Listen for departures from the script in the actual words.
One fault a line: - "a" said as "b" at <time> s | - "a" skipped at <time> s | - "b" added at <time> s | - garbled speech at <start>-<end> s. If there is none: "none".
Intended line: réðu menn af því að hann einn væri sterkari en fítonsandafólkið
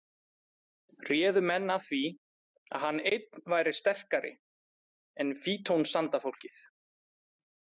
none